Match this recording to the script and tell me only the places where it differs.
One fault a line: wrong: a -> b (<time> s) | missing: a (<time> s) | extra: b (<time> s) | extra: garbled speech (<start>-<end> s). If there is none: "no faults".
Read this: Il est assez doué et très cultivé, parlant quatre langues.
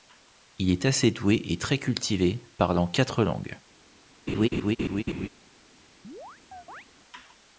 no faults